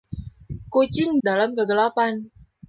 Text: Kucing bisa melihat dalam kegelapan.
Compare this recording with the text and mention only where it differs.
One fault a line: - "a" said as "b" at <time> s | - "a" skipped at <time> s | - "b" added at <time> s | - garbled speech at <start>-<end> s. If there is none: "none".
- "bisa melihat" skipped at 1.2 s